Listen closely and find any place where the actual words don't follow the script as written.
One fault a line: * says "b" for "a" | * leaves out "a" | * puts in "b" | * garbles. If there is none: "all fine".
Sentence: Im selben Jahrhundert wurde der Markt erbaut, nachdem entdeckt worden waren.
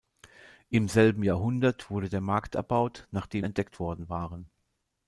all fine